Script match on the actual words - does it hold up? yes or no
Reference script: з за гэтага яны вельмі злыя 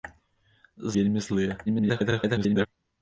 no